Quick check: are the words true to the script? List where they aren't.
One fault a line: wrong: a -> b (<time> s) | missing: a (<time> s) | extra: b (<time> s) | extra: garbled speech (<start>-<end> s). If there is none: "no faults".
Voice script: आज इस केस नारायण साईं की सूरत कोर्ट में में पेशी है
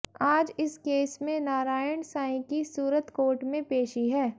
extra: में (1.2 s)
missing: में (3.6 s)